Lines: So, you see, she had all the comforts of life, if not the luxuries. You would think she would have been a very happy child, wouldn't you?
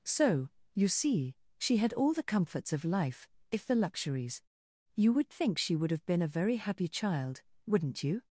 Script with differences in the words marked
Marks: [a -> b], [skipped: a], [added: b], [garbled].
So, you see, she had all the comforts of life, if [skipped: not] the luxuries. You would think she would have been a very happy child, wouldn't you?